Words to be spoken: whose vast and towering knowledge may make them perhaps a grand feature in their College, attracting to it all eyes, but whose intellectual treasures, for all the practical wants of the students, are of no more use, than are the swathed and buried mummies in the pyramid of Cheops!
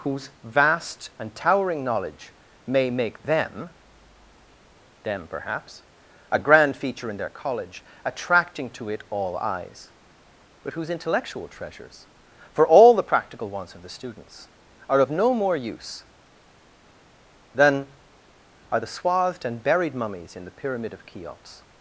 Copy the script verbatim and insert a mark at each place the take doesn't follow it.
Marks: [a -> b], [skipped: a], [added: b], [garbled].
whose vast and towering knowledge may make them [added: them] perhaps a grand feature in their College, attracting to it all eyes, but whose intellectual treasures, for all the practical wants of the students, are of no more use, than are the swathed and buried mummies in the pyramid of Cheops!